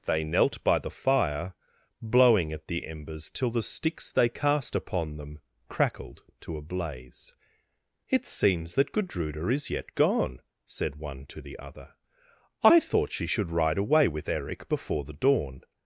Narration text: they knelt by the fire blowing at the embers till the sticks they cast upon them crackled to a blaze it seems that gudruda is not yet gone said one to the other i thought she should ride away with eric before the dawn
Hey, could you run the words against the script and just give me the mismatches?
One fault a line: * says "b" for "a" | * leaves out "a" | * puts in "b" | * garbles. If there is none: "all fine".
* leaves out "not"